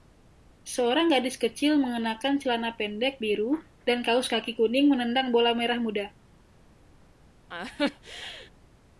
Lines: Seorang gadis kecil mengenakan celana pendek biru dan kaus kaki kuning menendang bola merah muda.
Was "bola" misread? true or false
false